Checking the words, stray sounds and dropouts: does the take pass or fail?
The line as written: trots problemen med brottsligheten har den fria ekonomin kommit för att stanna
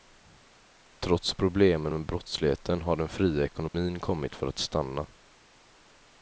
fail